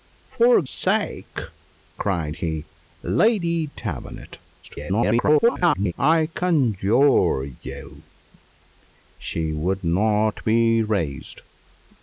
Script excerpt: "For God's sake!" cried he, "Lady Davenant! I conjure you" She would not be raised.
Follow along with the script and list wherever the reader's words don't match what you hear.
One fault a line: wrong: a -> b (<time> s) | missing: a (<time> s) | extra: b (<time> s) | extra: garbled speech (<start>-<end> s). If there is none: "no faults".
missing: God's (0.6 s)
extra: garbled speech (4.6-5.9 s)